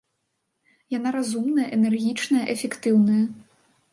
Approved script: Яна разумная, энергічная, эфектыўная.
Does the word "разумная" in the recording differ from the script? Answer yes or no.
no